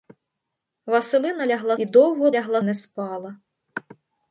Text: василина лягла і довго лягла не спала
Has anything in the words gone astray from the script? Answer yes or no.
no